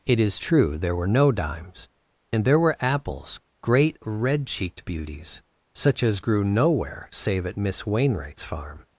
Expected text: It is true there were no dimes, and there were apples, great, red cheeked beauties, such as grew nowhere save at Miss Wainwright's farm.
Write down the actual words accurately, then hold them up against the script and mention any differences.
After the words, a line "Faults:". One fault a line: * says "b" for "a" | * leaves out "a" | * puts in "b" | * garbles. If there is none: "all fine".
It is true there were no dimes, and there were apples, great, red cheeked beauties, such as grew nowhere save at Miss Wainwright's farm.
Faults:
all fine